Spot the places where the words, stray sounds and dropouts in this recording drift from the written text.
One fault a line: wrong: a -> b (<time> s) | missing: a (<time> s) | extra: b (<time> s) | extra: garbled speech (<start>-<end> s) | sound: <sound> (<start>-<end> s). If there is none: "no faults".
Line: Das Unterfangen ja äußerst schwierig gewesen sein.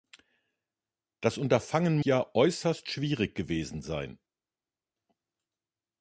no faults